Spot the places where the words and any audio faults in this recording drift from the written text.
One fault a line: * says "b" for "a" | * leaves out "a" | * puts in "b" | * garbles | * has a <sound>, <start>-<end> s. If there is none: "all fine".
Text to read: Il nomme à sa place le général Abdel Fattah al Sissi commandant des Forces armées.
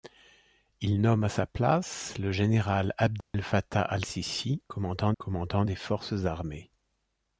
* has a dropout, 3.2-3.3 s
* puts in "commandant"